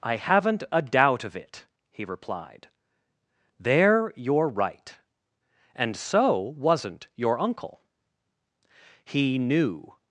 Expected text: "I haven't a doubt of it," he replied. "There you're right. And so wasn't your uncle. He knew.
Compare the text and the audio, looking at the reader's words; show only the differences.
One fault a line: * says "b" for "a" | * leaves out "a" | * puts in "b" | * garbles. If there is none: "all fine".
all fine